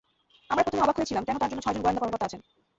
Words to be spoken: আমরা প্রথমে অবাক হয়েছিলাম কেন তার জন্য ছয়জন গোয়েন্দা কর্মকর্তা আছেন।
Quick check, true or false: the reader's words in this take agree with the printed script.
true